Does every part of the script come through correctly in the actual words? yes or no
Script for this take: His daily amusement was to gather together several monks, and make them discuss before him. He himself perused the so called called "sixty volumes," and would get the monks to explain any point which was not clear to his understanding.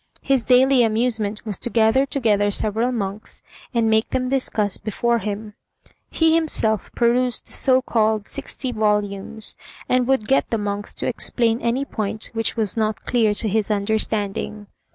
no